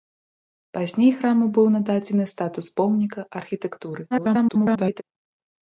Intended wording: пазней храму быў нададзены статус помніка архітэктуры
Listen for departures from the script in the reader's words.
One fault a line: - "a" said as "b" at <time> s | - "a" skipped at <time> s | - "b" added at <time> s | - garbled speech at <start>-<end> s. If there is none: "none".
- garbled speech at 4.1-5.0 s